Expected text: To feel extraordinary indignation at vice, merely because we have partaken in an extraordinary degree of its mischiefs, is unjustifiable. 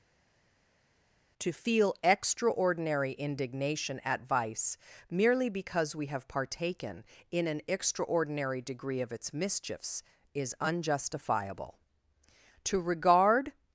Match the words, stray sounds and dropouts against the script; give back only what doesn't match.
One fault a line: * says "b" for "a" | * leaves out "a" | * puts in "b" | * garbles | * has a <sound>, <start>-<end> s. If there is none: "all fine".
* puts in "To regard"